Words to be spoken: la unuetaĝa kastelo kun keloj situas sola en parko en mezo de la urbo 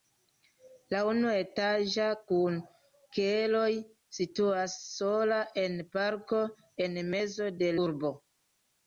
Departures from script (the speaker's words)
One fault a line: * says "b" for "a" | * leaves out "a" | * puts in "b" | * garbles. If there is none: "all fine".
* leaves out "kastelo"
* leaves out "la"